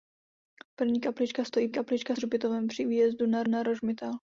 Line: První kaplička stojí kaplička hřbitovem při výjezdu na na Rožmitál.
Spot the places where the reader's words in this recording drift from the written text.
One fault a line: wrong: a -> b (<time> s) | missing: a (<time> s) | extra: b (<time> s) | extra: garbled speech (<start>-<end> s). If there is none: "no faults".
no faults